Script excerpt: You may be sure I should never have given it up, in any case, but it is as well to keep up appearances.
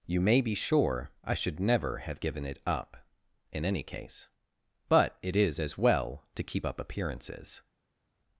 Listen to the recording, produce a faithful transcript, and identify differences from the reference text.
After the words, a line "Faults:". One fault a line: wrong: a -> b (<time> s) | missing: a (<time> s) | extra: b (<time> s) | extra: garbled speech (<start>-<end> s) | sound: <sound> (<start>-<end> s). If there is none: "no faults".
You may be sure I should never have given it up, in any case, but it is as well to keep up appearances.
Faults:
no faults